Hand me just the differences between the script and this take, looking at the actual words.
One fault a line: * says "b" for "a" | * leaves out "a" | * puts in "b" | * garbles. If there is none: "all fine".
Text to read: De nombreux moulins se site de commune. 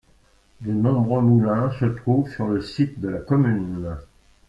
* puts in "trouvent sur le"
* puts in "la"